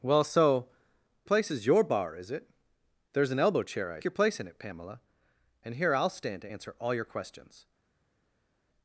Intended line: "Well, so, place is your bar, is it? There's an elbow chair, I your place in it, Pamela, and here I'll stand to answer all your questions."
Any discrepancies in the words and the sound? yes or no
no